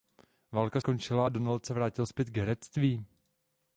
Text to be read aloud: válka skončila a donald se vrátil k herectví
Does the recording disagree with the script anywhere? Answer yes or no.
yes